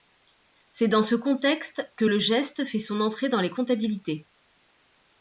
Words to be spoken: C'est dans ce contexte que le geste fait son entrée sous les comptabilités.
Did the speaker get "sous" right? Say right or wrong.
wrong